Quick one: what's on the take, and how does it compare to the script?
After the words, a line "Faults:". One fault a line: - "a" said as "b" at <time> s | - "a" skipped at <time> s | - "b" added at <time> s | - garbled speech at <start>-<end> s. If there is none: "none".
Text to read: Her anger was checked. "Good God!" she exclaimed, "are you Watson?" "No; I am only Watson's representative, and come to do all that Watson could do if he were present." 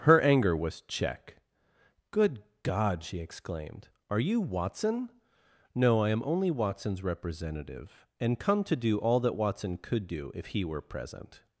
Her anger was check. "Good God!" she exclaimed, "are you Watson?" "No; I am only Watson's representative, and come to do all that Watson could do if he were present."
Faults:
- "checked" said as "check" at 0.8 s